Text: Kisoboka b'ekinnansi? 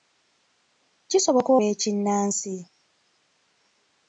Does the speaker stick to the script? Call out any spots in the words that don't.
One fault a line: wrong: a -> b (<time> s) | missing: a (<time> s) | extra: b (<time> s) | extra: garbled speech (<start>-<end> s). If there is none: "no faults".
no faults